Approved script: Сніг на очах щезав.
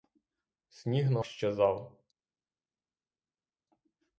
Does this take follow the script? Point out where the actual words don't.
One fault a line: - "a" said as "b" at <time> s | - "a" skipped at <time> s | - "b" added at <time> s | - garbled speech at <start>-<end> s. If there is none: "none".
- "очах" skipped at 1.2 s